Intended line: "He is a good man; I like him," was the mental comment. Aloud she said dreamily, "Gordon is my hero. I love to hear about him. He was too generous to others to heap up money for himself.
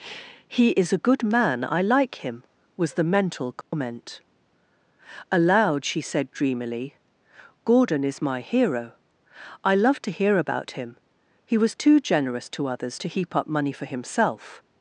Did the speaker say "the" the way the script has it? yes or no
yes